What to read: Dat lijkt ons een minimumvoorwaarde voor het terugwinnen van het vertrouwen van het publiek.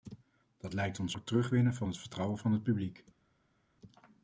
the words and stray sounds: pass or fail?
fail